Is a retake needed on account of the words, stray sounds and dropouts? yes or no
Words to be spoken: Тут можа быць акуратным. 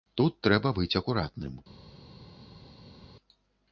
yes